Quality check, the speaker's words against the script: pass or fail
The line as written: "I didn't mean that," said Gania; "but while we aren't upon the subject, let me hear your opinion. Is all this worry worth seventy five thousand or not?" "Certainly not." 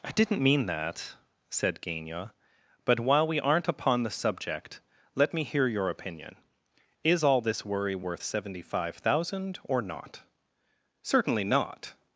pass